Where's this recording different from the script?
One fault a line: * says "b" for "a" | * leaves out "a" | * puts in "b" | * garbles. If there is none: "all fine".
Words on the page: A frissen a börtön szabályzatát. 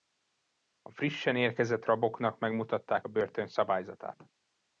* puts in "érkezett raboknak megmutatták"